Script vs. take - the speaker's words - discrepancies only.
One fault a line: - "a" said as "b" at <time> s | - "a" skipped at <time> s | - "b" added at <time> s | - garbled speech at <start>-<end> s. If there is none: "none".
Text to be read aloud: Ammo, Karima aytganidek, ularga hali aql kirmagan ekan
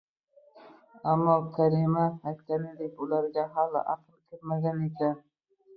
none